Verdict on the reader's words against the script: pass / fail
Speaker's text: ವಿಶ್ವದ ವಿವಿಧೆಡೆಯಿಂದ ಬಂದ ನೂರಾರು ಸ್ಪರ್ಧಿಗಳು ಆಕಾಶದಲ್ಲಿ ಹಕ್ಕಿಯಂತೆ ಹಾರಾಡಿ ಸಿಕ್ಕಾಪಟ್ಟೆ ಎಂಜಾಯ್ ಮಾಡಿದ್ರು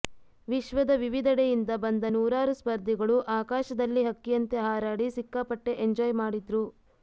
pass